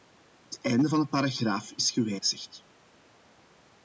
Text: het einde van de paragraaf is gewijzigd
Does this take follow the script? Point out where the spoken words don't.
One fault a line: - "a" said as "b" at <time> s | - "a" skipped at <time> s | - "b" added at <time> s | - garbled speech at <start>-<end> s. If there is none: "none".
none